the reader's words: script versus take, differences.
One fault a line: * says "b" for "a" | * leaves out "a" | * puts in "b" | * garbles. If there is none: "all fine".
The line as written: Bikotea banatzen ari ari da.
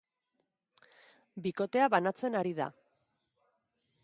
* leaves out "ari"